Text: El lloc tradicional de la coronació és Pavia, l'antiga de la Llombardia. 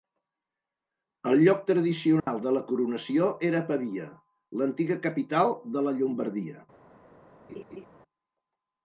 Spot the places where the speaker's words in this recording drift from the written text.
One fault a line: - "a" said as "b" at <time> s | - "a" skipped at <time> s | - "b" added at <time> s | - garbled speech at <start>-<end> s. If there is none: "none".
- "és" said as "era" at 3.5 s
- "capital" added at 5.1 s